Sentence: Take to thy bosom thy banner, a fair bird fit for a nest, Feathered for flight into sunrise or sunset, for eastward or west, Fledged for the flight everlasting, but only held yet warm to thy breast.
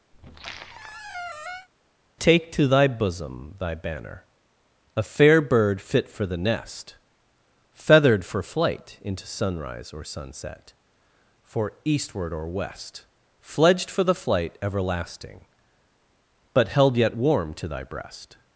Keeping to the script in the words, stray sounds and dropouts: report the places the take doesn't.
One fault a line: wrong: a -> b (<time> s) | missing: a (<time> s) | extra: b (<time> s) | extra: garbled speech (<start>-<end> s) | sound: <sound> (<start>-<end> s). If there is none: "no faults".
sound: squeak (0.1-1.7 s)
wrong: a -> the (6.2 s)
missing: only (16.7 s)